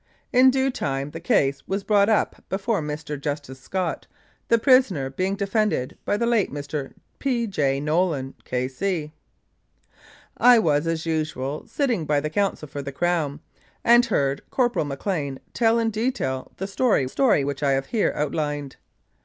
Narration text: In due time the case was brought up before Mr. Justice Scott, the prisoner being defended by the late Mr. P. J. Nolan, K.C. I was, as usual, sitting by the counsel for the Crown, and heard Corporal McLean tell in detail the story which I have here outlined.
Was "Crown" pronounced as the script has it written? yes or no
yes